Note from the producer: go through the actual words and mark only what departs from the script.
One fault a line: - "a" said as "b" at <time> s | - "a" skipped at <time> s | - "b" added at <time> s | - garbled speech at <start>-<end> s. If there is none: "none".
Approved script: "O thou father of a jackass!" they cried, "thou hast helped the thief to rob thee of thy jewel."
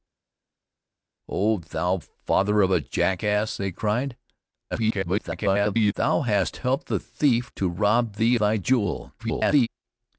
- garbled speech at 4.7-5.9 s
- "of" skipped at 8.3 s
- garbled speech at 9.2-9.7 s